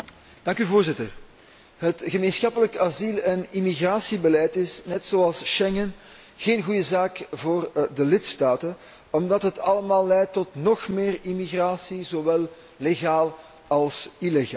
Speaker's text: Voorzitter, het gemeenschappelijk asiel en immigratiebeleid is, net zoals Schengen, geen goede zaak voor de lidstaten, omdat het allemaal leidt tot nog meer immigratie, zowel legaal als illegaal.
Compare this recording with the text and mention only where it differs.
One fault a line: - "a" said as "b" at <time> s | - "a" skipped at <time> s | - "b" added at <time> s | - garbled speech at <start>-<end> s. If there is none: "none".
none